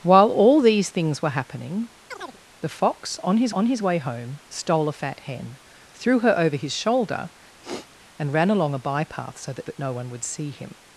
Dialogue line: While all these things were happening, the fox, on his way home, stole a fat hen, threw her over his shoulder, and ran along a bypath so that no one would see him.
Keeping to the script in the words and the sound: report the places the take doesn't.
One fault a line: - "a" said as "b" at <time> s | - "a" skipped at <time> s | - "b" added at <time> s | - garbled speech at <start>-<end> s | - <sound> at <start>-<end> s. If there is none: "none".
- chirp at 2.1-2.4 s
- "on his" added at 3.5 s
- sniff at 7.6-8.0 s
- "that" added at 9.6 s